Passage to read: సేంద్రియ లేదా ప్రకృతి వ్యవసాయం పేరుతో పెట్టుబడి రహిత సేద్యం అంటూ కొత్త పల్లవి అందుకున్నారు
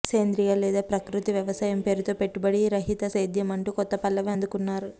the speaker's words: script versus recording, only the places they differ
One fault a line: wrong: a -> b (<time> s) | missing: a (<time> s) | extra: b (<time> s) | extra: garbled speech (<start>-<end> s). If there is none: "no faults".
no faults